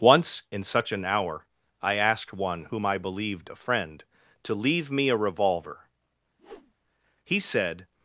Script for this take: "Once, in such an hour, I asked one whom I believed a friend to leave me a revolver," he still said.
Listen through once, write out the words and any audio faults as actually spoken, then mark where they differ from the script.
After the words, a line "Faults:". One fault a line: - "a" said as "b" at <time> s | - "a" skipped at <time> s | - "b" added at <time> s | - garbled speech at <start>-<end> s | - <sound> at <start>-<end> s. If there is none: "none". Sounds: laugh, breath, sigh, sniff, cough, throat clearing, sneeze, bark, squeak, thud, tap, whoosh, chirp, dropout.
"Once, in such an hour, I asked one whom I believed a friend to leave me a revolver," he said.
Faults:
- whoosh at 6.4-6.7 s
- "still" skipped at 7.4 s